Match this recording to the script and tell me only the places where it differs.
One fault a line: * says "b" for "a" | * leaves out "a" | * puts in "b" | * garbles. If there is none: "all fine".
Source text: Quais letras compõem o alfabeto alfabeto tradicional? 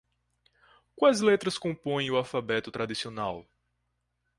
* leaves out "alfabeto"